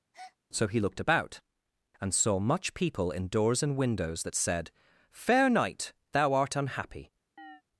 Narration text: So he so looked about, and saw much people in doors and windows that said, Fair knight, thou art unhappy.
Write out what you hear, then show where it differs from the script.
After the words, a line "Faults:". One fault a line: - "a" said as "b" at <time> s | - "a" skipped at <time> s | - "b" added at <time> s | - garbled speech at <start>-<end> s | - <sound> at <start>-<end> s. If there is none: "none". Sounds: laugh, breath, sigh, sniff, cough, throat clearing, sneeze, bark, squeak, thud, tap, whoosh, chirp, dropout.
So he looked about, and saw much people in doors and windows that said, Fair knight, thou art unhappy.
Faults:
- breath at 0.1-0.4 s
- "so" skipped at 0.8 s
- chirp at 7.4-7.6 s